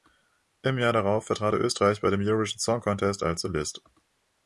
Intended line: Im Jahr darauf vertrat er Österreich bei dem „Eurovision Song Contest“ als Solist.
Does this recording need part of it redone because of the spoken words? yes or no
no